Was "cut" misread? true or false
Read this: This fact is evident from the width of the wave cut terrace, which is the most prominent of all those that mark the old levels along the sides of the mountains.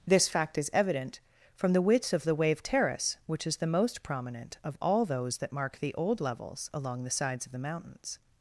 true